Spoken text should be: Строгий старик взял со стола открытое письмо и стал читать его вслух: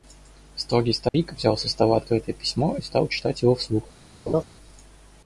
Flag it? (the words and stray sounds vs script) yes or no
yes